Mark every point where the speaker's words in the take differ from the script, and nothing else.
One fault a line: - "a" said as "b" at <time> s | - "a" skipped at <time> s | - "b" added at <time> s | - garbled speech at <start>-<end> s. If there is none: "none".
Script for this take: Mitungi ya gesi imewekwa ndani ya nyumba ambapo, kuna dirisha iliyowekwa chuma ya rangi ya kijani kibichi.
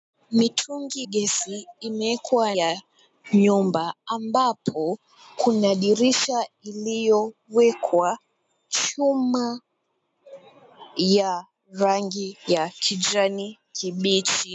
- "ya" skipped at 1.0 s
- "ndani" skipped at 2.6 s